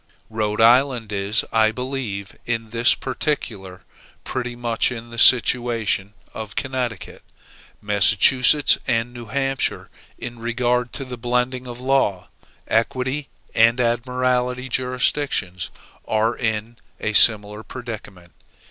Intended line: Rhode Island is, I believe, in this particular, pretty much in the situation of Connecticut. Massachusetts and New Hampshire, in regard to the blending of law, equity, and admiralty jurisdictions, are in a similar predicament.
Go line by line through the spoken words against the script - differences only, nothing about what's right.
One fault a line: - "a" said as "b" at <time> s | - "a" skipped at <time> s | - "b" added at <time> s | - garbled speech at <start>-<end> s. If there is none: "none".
none